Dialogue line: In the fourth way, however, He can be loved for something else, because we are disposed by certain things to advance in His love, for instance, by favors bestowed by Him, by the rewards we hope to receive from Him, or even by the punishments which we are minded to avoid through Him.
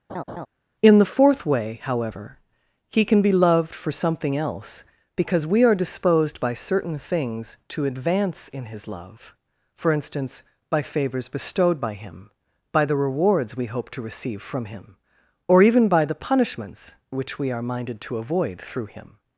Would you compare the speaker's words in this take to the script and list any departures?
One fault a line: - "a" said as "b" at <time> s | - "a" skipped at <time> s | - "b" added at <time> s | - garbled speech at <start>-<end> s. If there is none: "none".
none